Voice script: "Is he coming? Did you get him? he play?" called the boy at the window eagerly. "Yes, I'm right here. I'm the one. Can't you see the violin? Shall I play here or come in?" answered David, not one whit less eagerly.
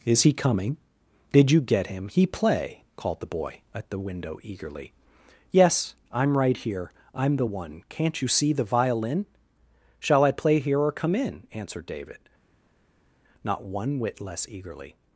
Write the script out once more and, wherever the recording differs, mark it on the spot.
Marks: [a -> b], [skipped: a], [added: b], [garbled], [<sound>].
"Is he coming? Did you get him? he play?" called the boy at the window eagerly. "Yes, I'm right here. I'm the one. Can't you see the violin? Shall I play here or come in?" answered David, not one whit less eagerly.